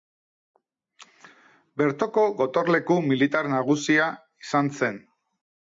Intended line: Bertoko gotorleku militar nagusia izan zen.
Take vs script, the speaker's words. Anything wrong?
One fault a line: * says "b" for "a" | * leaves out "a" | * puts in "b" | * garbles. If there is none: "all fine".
all fine